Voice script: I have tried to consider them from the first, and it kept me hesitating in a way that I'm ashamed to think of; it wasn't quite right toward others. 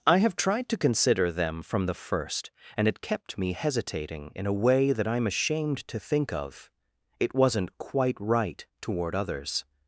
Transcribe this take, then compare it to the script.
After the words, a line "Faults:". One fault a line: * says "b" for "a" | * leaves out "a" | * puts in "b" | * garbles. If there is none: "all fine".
I have tried to consider them from the first, and it kept me hesitating in a way that I'm ashamed to think of; it wasn't quite right toward others.
Faults:
all fine